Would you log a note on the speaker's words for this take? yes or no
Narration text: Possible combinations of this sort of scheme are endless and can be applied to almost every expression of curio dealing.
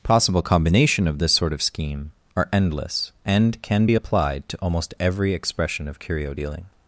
yes